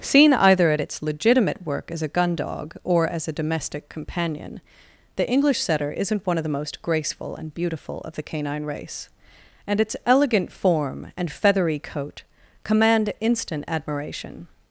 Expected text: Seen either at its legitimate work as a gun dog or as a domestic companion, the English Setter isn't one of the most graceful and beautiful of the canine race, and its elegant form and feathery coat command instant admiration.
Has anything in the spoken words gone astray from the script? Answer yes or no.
no